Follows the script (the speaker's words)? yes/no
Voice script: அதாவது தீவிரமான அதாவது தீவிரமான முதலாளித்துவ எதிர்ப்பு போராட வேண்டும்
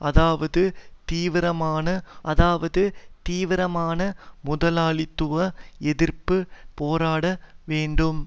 yes